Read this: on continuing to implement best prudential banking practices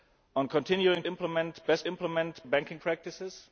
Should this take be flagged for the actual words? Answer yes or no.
yes